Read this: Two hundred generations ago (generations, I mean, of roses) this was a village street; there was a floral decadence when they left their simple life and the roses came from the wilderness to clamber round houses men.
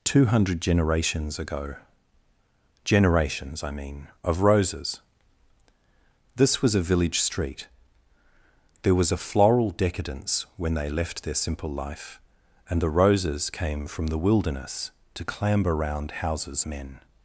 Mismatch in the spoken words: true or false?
false